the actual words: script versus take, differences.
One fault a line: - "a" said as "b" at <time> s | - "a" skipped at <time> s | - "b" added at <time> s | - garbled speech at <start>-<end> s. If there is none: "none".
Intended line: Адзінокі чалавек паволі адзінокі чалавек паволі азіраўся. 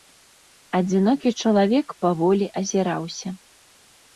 - "адзінокі чалавек паволі" skipped at 2.5 s